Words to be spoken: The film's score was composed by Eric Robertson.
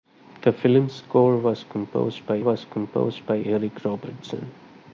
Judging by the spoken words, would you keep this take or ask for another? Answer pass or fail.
fail